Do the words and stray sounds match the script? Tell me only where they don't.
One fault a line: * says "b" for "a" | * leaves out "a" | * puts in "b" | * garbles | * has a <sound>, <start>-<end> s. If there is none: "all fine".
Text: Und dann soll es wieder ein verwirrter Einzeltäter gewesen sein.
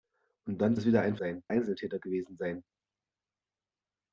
* leaves out "soll"
* says "sein" for "verwirrter"